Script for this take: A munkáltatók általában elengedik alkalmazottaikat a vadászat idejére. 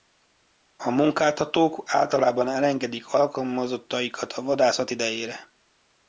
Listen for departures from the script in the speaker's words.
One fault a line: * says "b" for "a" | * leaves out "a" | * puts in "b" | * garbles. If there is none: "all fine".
all fine